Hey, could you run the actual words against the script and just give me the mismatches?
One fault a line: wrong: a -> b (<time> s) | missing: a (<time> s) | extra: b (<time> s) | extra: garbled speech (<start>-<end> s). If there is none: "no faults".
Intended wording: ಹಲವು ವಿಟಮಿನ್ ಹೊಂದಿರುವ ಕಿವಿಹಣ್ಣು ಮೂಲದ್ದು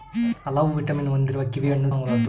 no faults